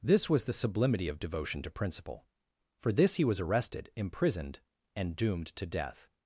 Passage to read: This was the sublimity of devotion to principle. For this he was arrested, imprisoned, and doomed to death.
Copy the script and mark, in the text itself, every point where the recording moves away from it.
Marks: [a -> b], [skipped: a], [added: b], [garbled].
This was the sublimity of devotion to principle. For this he was arrested, imprisoned, and doomed to death.